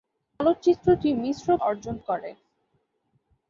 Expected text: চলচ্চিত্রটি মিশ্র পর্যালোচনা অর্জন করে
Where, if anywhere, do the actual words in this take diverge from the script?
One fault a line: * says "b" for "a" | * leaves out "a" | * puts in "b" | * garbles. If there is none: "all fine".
* leaves out "পর্যালোচনা"